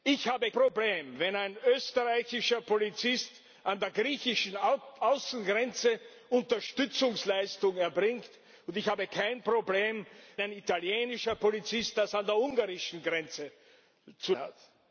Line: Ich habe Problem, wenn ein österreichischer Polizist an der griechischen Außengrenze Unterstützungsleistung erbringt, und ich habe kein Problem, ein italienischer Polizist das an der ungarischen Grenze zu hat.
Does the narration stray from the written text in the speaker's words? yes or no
no